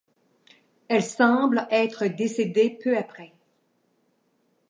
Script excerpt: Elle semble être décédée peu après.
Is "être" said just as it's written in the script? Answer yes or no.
yes